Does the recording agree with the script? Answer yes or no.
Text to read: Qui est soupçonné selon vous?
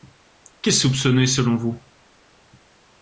yes